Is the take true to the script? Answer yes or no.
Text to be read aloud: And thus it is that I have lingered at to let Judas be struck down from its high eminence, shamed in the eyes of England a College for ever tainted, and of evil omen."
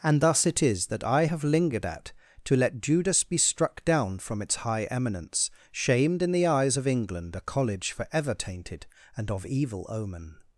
yes